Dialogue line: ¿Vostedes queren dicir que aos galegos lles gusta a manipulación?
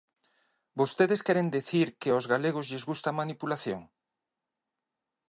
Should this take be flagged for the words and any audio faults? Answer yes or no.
no